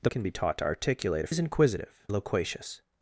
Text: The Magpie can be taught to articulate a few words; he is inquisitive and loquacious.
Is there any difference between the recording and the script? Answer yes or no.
yes